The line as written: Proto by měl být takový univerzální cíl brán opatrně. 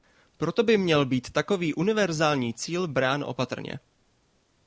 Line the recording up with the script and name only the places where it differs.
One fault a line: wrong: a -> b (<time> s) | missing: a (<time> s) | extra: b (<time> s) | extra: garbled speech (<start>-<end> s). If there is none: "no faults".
no faults